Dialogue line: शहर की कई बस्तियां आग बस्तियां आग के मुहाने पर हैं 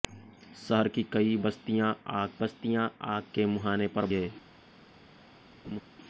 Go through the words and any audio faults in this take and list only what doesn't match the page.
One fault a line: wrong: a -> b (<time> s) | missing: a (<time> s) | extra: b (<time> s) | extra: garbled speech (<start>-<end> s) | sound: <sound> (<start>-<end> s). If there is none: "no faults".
sound: laugh (5.6-5.8 s)